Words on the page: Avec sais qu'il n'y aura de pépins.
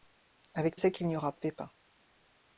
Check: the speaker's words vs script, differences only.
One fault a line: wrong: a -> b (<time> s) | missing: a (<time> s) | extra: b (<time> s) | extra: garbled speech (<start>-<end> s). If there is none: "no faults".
no faults